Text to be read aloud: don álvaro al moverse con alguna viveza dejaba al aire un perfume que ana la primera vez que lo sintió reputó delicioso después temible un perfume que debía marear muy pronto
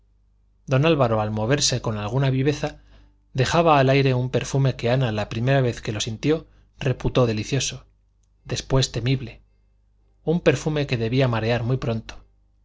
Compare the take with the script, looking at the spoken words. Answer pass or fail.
pass